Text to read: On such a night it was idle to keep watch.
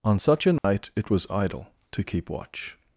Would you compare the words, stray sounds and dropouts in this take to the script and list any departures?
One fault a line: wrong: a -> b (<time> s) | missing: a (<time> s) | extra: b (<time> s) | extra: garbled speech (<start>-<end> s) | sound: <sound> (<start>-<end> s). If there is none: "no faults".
sound: dropout (0.6-0.6 s)